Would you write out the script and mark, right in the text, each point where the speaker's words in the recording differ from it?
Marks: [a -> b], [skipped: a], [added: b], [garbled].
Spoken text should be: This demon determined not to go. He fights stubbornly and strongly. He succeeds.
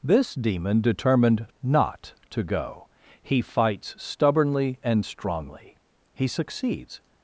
This demon determined not to go. He fights stubbornly and strongly. He succeeds.